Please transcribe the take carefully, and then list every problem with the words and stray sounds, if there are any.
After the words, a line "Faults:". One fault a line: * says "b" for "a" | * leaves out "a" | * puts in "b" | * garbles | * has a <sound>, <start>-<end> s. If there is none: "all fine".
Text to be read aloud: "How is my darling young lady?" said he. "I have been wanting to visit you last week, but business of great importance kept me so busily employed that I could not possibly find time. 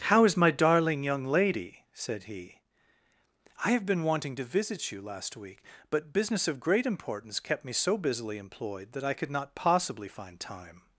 "How is my darling young lady?" said he. "I have been wanting to visit you last week, but business of great importance kept me so busily employed that I could not possibly find time.
Faults:
all fine